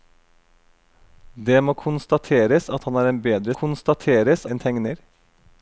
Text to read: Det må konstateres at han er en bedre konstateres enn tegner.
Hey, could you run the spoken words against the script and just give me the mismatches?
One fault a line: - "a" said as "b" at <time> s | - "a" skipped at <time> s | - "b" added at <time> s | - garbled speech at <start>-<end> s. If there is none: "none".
none